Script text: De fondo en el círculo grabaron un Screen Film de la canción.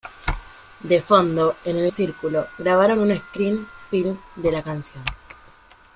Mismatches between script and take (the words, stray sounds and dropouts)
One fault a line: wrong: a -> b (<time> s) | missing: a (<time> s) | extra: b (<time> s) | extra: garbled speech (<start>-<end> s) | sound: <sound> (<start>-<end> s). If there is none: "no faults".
no faults